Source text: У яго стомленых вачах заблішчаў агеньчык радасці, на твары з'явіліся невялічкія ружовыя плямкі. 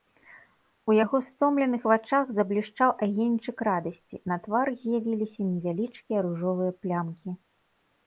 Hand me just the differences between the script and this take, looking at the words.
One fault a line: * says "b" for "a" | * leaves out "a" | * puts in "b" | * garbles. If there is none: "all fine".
all fine